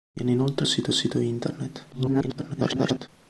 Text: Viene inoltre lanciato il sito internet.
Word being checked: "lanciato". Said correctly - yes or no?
no